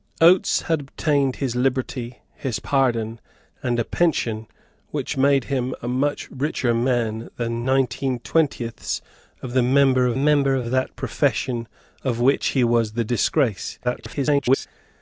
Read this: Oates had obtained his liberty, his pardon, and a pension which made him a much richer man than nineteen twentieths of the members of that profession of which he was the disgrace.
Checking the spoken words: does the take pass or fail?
fail